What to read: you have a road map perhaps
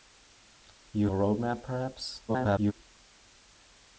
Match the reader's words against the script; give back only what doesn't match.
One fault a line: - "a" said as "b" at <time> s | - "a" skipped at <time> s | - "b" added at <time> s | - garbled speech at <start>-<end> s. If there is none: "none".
- "have" skipped at 1.1 s
- garbled speech at 2.3-2.7 s